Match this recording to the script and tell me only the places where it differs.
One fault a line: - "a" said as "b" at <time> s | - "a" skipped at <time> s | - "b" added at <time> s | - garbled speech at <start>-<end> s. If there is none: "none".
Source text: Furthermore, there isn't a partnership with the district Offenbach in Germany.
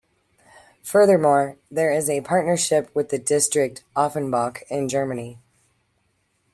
- "isn't" said as "is" at 1.9 s